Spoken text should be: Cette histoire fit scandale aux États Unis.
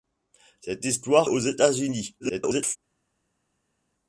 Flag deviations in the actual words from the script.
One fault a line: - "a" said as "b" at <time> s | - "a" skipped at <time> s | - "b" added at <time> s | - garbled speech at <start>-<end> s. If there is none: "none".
- "fit scandale" skipped at 1.3 s
- garbled speech at 2.2-2.8 s